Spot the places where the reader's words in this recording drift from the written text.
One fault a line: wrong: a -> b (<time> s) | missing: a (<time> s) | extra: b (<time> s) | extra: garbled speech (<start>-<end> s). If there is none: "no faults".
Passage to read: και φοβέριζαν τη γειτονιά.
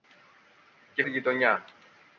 missing: φοβέριζαν (1.0 s)